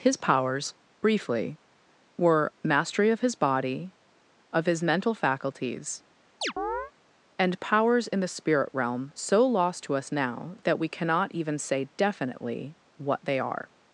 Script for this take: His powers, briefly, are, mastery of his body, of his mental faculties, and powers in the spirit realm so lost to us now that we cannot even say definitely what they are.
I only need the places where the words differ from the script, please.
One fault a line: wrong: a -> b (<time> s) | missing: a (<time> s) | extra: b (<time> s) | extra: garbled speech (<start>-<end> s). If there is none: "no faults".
wrong: are -> were (2.2 s)